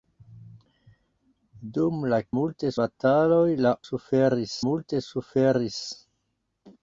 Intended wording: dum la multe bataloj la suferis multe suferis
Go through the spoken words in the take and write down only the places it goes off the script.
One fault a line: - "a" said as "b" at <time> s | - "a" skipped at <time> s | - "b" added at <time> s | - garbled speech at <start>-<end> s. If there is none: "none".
none